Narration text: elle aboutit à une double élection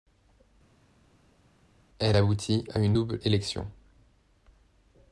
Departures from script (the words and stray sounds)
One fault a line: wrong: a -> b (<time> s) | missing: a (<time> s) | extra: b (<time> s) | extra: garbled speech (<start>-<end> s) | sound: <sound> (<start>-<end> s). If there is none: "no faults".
no faults